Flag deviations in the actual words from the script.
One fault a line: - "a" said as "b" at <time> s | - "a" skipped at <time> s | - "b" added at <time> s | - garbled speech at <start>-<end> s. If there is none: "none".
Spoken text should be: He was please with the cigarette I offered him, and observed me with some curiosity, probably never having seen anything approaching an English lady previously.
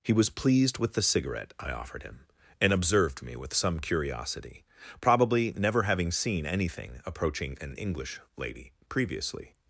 - "please" said as "pleased" at 0.3 s